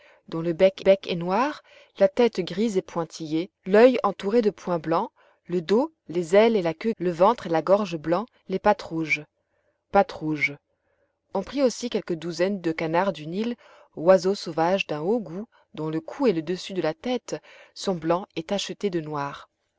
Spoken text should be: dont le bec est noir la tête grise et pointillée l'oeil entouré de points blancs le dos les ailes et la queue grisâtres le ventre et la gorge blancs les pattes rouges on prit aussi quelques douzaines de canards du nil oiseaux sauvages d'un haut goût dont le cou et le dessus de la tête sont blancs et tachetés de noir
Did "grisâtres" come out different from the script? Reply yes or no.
yes